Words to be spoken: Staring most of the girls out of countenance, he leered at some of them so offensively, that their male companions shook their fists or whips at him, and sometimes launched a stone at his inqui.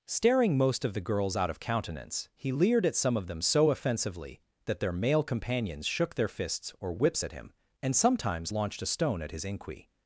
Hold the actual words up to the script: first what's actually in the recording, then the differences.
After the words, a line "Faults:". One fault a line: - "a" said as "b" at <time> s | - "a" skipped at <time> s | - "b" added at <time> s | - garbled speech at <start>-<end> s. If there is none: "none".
Staring most of the girls out of countenance, he leered at some of them so offensively, that their male companions shook their fists or whips at him, and sometimes launched a stone at his inqui.
Faults:
none